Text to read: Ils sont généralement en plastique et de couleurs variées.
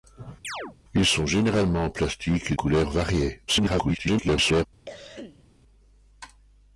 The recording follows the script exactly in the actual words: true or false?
false